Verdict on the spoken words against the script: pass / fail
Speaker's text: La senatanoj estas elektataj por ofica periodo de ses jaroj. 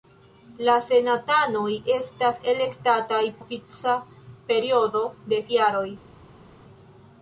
fail